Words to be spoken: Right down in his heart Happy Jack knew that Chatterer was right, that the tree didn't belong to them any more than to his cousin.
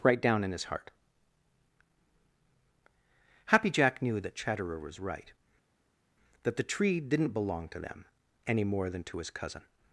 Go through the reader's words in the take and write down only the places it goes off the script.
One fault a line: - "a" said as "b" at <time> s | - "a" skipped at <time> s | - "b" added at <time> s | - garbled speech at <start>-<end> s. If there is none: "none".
none